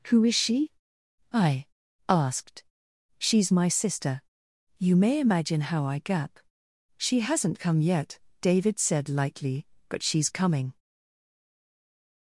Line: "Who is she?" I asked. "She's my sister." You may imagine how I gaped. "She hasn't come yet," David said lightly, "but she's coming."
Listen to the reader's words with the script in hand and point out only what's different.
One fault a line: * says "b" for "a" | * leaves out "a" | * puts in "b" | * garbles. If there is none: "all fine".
* says "gap" for "gaped"